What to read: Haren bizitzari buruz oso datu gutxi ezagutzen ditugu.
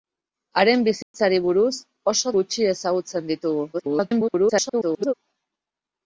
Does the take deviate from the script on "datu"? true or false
true